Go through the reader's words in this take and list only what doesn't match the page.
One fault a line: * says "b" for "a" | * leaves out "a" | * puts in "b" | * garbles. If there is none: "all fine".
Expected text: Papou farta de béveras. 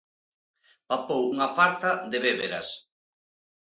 * puts in "unha"